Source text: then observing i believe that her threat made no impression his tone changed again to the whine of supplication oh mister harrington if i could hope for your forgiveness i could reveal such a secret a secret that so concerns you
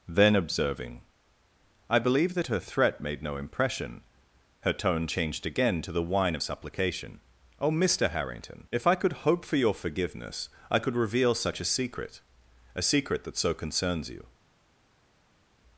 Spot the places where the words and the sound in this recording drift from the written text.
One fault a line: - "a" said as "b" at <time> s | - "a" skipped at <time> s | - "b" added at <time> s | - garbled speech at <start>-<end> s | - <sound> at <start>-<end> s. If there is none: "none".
- "his" said as "her" at 4.6 s